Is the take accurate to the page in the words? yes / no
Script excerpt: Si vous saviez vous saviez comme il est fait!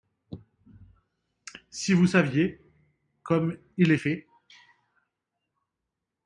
no